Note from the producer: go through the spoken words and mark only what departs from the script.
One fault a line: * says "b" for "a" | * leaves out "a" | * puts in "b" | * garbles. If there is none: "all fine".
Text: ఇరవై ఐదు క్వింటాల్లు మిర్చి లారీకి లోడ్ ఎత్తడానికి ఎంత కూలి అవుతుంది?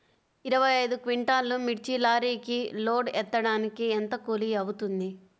all fine